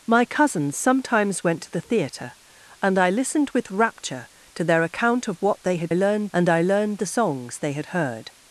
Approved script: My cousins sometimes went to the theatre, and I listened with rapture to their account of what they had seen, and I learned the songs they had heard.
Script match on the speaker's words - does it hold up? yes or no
no